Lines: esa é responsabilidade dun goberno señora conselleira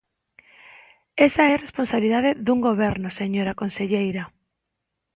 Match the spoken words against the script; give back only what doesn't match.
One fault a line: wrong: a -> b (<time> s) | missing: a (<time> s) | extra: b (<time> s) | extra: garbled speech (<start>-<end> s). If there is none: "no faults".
no faults